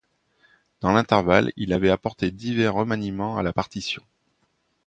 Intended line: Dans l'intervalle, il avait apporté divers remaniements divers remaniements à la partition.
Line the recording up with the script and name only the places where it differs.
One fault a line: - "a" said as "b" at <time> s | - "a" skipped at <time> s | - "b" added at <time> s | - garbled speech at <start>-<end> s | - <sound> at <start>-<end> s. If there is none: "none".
- "divers remaniements" skipped at 3.4 s